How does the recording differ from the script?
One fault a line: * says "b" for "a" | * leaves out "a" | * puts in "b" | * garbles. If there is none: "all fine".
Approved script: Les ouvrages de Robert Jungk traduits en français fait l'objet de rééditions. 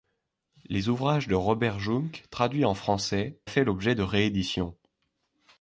all fine